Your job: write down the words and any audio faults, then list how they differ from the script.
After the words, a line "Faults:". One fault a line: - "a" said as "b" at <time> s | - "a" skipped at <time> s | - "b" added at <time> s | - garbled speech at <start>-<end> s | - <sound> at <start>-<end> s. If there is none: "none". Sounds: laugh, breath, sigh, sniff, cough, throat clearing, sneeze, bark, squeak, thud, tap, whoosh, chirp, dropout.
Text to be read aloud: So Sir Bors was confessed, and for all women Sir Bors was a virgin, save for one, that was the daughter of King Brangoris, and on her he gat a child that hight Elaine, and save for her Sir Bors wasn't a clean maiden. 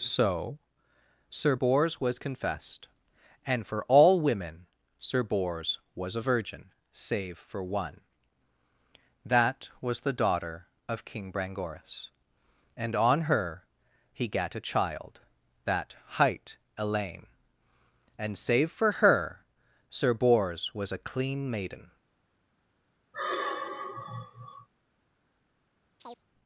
So Sir Bors was confessed, and for all women Sir Bors was a virgin, save for one, that was the daughter of King Brangoris, and on her he gat a child that hight Elaine, and save for her Sir Bors was a clean maiden.
Faults:
- "wasn't" said as "was" at 20.7 s
- sigh at 23.1-24.7 s
- chirp at 26.0-26.2 s